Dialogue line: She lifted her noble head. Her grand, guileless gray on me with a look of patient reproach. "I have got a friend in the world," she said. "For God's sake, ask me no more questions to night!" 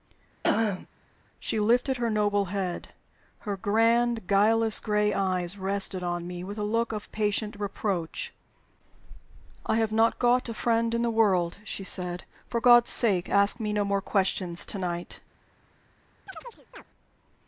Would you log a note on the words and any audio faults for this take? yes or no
yes